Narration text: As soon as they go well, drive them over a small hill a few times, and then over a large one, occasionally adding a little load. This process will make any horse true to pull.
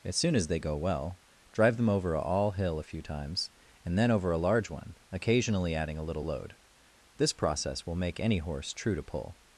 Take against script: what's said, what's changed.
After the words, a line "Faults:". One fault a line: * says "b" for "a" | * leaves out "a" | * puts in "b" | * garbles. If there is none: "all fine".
As soon as they go well, drive them over a all hill a few times, and then over a large one, occasionally adding a little load. This process will make any horse true to pull.
Faults:
* says "all" for "small"